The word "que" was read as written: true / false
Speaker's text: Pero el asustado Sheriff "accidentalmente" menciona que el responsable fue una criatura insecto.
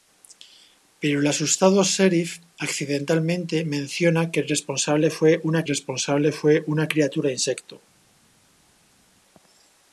true